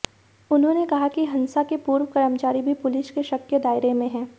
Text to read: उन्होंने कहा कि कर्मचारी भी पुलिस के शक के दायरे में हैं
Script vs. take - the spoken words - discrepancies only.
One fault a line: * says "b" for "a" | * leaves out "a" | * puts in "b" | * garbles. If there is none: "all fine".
* puts in "हंसा के पूर्व"